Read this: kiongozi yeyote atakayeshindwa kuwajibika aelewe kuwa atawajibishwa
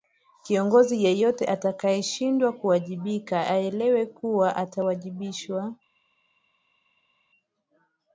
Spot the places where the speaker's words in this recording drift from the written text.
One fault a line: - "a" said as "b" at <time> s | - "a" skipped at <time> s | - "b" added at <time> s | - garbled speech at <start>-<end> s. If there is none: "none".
none